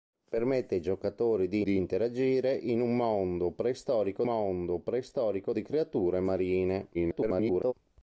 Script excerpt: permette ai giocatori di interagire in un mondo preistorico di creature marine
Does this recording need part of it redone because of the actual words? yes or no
yes